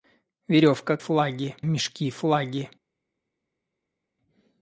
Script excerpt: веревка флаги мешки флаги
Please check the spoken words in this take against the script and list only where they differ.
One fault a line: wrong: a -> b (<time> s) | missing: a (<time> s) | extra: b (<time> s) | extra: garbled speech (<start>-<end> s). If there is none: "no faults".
no faults